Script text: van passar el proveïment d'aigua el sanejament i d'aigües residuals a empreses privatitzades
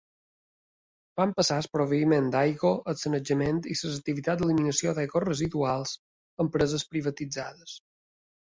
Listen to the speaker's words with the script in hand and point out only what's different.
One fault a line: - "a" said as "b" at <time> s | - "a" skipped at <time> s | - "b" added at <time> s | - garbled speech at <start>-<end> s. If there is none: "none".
- "les activitats d'eliminació" added at 3.8 s